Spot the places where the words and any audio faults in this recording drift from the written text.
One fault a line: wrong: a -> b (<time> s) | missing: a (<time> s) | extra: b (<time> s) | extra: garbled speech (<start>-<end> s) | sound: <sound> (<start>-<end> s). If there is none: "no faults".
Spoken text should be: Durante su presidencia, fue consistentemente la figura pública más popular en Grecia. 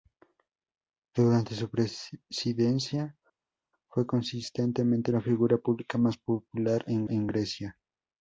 extra: en (7.1 s)